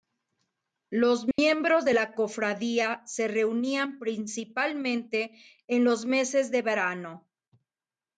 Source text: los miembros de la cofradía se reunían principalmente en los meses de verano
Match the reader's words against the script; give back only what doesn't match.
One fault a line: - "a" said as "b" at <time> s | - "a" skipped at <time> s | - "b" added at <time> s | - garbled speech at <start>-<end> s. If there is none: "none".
none